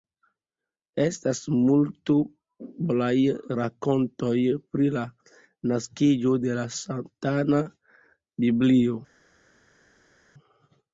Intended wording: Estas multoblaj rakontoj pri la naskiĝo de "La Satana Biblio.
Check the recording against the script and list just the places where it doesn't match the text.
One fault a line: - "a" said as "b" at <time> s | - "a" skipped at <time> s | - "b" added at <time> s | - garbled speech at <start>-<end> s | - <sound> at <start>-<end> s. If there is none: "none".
none